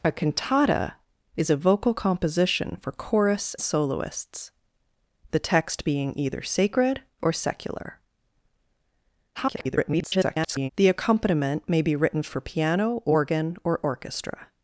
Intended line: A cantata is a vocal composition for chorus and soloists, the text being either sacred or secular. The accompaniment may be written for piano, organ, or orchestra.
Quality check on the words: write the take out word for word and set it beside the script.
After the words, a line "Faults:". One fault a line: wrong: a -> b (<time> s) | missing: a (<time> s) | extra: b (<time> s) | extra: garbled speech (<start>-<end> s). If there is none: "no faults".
A cantata is a vocal composition for chorus soloists, the text being either sacred or secular. [garbled] The accompaniment may be written for piano, organ, or orchestra.
Faults:
missing: and (3.5 s)
extra: garbled speech (9.3-10.7 s)